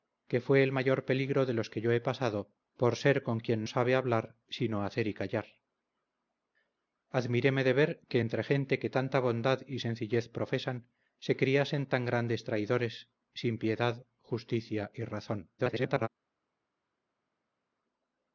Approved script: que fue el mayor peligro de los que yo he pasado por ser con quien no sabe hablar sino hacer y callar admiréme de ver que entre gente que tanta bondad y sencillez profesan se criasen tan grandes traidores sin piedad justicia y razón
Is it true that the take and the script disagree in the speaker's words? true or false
true